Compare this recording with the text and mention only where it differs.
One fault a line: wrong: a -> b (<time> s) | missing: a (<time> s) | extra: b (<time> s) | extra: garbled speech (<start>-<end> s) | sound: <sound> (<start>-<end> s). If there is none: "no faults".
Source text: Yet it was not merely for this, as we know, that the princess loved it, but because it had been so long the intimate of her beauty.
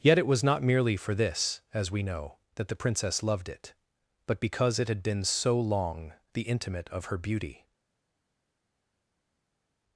no faults